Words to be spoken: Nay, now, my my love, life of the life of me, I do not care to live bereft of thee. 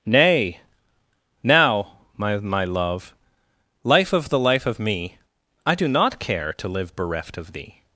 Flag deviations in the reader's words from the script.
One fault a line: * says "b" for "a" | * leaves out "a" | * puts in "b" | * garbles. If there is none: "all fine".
all fine